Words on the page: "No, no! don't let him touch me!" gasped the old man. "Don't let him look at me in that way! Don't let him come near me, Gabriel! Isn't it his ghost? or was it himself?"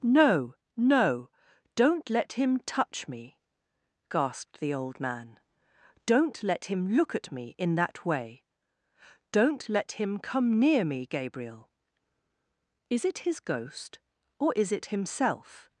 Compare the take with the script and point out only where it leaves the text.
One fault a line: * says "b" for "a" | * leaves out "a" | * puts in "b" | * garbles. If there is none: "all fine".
* says "Is" for "Isn't"
* says "is" for "was"